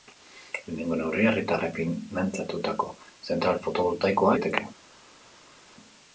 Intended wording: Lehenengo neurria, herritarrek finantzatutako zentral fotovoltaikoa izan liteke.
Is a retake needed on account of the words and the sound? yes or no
yes